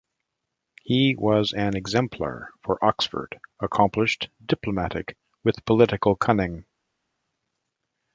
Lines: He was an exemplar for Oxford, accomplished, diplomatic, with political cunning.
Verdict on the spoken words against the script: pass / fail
pass